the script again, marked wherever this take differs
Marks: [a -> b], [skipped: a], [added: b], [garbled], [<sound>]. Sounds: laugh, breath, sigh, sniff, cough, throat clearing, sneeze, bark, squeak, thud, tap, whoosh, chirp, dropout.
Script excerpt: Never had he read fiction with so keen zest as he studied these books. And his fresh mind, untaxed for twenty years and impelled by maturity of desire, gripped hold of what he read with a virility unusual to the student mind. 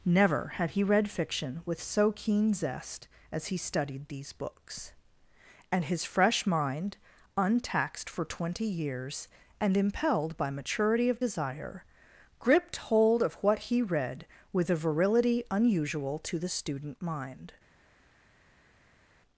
Never had he read fiction with so keen zest as he studied these books. And his fresh mind, untaxed for twenty years and impelled by maturity of desire, gripped hold of what he read with a virility unusual to the student mind.